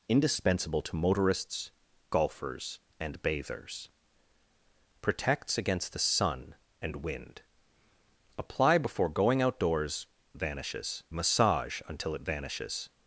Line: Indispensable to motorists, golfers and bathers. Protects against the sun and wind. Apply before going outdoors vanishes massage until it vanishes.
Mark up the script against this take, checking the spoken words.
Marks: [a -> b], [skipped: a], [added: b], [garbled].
Indispensable to motorists, golfers and bathers. Protects against the sun and wind. Apply before going outdoors vanishes massage until it vanishes.